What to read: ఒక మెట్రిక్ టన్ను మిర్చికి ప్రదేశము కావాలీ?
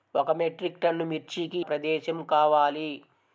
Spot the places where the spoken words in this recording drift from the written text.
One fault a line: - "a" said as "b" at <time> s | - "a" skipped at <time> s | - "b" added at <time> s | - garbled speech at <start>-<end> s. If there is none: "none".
none